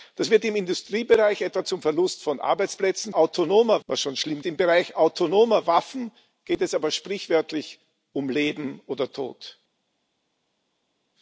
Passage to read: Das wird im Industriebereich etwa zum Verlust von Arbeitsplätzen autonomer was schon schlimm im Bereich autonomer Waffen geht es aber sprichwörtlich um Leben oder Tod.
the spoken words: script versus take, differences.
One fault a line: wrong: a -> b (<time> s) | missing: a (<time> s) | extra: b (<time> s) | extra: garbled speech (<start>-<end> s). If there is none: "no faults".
no faults